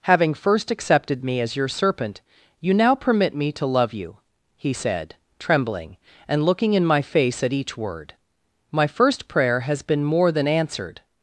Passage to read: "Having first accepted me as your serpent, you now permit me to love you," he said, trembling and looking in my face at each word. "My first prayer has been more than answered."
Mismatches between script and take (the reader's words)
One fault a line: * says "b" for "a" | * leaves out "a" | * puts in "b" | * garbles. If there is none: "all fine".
all fine